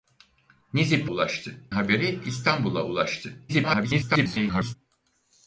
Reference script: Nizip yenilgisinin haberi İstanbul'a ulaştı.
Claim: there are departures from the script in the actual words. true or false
true